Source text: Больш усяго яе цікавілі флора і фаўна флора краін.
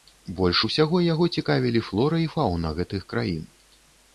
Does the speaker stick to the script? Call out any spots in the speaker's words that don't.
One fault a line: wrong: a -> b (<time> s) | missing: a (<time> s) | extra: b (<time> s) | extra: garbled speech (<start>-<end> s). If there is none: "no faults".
wrong: яе -> яго (1.1 s)
wrong: флора -> гэтых (2.8 s)